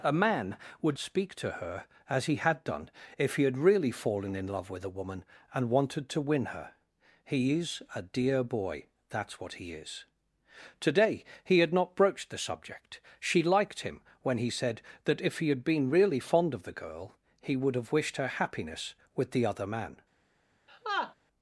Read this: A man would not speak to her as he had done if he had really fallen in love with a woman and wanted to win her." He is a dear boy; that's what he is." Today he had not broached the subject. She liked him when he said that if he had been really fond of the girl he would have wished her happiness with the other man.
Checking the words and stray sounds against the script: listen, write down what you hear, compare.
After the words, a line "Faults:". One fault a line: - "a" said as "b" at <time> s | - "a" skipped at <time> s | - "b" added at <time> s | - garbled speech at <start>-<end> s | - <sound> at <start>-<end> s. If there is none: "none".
A man would speak to her as he had done if he had really fallen in love with a woman and wanted to win her." He is a dear boy; that's what he is." Today he had not broached the subject. She liked him when he said that if he had been really fond of the girl he would have wished her happiness with the other man.
Faults:
- "not" skipped at 1.0 s
- laugh at 20.7-21.1 s